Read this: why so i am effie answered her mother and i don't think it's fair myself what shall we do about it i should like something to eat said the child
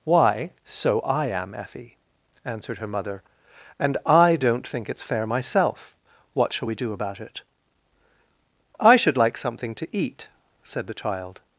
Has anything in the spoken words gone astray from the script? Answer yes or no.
no